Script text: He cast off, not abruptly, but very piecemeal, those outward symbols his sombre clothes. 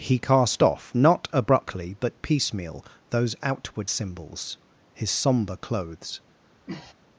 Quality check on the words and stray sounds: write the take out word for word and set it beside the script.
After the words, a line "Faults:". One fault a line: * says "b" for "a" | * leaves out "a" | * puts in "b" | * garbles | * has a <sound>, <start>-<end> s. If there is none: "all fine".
He cast off, not abruptly, but piecemeal, those outward symbols his sombre clothes.
Faults:
* leaves out "very"
* has a sniff, 6.6-6.9 s